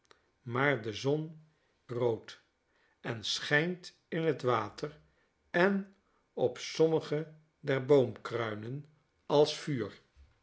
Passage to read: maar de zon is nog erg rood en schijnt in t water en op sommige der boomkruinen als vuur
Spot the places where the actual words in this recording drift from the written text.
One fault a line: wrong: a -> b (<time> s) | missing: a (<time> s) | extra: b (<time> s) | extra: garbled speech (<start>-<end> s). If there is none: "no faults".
missing: is nog erg (1.4 s)